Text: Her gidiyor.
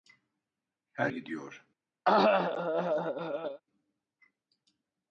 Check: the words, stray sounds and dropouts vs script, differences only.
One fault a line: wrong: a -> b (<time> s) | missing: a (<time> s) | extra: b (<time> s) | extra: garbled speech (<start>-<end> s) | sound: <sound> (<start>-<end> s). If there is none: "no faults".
sound: cough (2.1-3.6 s)